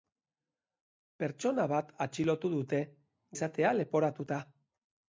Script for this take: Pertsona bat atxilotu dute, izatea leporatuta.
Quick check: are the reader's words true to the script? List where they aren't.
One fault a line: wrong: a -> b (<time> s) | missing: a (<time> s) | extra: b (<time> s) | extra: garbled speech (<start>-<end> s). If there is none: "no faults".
no faults